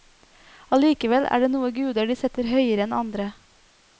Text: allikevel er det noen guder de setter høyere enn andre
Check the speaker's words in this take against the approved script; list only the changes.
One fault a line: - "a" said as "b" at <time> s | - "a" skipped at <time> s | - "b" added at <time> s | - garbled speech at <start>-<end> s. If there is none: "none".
none